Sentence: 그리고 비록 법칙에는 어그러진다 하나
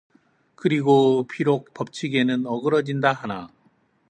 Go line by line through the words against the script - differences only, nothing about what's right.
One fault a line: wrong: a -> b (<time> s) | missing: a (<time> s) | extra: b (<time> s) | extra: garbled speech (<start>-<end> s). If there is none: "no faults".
no faults